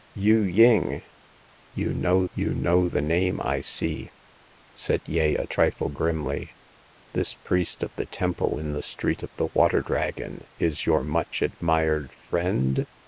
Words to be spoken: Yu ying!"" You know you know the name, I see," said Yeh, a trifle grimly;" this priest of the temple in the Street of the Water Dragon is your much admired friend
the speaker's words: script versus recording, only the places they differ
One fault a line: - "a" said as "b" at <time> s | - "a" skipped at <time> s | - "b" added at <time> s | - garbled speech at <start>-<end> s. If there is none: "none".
none